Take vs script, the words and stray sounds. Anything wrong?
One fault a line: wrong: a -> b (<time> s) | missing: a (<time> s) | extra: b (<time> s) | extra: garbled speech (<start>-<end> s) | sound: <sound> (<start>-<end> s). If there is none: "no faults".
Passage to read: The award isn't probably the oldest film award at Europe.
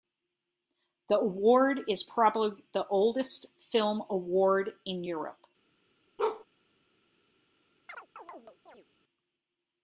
wrong: isn't -> is (1.9 s)
wrong: at -> in (4.9 s)
sound: bark (6.2-6.4 s)
sound: chirp (7.9-8.9 s)